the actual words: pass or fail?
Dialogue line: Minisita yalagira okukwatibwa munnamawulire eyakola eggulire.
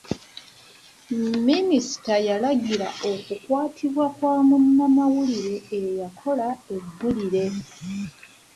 fail